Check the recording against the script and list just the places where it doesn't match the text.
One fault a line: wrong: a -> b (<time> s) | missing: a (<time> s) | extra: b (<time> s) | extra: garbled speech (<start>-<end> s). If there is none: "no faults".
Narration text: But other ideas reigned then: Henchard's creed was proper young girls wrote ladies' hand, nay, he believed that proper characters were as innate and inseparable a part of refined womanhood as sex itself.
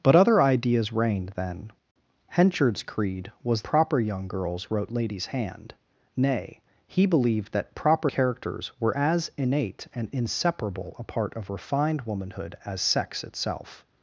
no faults